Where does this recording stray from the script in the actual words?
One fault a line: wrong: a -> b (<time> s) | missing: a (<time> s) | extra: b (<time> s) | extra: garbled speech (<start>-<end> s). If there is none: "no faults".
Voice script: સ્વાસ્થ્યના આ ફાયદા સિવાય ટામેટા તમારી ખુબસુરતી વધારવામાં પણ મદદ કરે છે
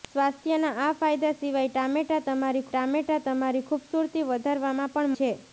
extra: ટામેટા તમારી (2.7 s)
missing: મદદ કરે (5.2 s)